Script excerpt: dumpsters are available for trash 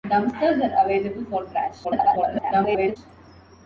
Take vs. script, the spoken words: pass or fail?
fail